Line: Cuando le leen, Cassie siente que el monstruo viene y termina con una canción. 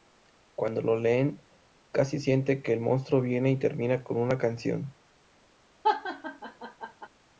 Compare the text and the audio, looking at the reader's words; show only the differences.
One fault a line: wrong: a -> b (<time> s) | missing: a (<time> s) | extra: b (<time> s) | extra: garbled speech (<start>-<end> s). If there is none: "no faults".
wrong: le -> lo (0.8 s)